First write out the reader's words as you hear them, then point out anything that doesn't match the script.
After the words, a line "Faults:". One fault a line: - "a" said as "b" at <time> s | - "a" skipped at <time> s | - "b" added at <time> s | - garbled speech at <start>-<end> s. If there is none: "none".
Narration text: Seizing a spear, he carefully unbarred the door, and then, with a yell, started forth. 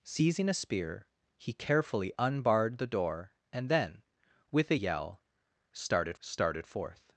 Seizing a spear, he carefully unbarred the door, and then, with a yell, started started forth.
Faults:
- "started" added at 6.2 s